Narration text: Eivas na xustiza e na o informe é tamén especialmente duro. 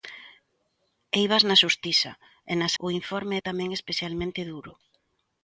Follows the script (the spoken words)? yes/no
yes